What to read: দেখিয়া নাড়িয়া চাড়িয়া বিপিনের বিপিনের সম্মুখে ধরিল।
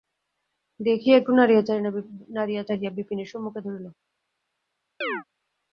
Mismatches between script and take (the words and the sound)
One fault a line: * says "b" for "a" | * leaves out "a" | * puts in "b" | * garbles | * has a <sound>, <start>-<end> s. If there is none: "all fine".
* puts in "একটু"
* leaves out "বিপিনের"
* has a chirp, 5.0-5.2 s